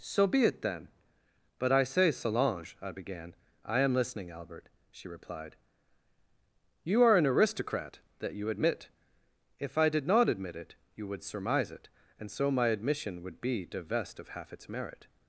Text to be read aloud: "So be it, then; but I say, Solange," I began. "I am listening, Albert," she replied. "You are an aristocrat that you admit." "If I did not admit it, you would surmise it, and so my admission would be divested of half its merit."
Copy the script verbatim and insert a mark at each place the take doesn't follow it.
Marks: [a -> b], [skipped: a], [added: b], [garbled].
"So be it, then; but I say, Solange," I began. "I am listening, Albert," she replied. "You are an aristocrat that you admit." "If I did not admit it, you would surmise it, and so my admission would be [divested -> divest] of half its merit."